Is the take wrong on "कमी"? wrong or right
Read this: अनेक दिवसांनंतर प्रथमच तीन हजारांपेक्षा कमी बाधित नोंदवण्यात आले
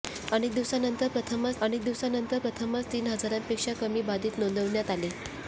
right